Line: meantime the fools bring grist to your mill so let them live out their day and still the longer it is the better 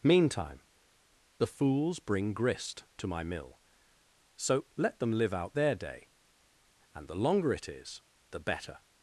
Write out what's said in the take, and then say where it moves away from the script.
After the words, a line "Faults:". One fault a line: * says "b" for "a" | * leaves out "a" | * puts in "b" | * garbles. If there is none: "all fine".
meantime the fools bring grist to my mill so let them live out their day and the longer it is the better
Faults:
* says "my" for "your"
* leaves out "still"